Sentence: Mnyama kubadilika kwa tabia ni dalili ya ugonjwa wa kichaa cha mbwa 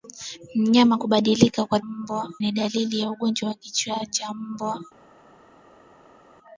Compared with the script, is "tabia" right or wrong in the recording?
wrong